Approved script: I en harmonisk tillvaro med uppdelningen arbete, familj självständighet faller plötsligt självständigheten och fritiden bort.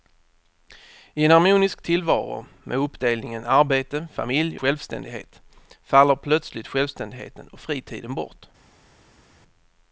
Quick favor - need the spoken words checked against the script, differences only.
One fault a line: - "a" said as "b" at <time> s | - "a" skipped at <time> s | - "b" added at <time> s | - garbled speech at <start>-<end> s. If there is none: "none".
none